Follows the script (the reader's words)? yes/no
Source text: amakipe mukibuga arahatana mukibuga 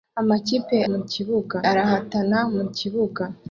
yes